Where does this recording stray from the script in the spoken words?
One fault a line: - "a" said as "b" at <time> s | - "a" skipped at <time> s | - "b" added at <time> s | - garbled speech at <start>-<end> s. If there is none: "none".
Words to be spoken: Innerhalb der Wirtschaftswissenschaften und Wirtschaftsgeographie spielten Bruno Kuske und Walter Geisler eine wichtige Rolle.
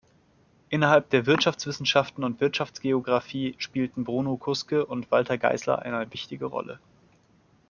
none